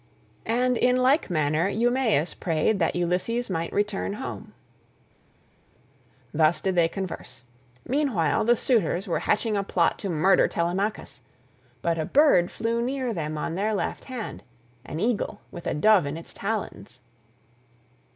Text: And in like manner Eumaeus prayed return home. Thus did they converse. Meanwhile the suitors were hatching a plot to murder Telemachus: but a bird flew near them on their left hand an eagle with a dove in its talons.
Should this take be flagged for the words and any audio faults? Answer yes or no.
yes